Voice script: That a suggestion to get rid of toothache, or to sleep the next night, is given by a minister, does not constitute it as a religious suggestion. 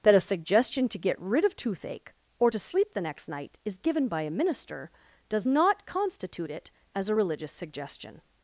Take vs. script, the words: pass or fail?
pass